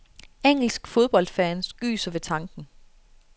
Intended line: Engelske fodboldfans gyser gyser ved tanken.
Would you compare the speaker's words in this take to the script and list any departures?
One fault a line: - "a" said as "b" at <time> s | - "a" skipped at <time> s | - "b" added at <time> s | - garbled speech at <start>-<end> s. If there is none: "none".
- "gyser" skipped at 2.1 s